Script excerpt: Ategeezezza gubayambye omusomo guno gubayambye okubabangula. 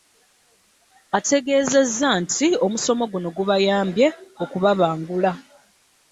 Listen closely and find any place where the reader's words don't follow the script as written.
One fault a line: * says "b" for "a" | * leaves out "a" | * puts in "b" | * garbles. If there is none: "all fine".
* says "nti" for "gubayambye"